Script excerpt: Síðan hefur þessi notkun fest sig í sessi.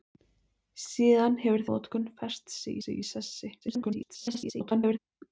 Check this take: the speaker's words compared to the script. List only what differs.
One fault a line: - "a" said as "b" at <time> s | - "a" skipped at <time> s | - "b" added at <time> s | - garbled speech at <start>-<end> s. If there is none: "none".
- "þessi" skipped at 1.6 s
- "sig" added at 2.8 s
- garbled speech at 3.6-5.0 s